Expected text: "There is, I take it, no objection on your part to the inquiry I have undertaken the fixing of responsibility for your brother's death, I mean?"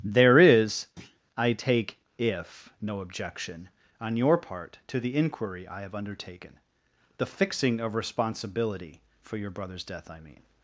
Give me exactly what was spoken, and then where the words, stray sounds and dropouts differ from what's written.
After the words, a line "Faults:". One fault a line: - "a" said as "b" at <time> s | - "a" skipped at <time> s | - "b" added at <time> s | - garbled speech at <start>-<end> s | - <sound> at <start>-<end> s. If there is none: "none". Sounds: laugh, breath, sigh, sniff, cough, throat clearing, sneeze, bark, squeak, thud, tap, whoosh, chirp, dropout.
"There is, I take if, no objection on your part to the inquiry I have undertaken the fixing of responsibility for your brother's death, I mean?"
Faults:
- thud at 1.0-1.2 s
- "it" said as "if" at 2.2 s